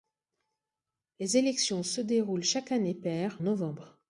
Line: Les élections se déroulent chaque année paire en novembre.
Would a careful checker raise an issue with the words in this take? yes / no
yes